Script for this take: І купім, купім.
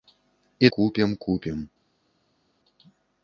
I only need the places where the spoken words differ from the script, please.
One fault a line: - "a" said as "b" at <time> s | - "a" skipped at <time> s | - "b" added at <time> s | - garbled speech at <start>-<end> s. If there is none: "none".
none